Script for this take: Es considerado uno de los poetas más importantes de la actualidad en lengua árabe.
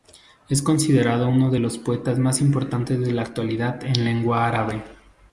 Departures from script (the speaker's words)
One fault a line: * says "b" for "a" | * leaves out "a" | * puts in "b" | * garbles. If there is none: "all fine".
all fine